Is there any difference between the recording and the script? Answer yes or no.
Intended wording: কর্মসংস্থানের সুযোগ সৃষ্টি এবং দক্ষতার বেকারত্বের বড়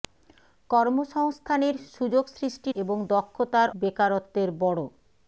no